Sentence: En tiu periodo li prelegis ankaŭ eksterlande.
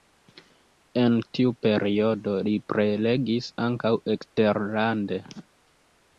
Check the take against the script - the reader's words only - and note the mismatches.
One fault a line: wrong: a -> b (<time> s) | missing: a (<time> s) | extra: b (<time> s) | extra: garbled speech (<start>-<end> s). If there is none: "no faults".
no faults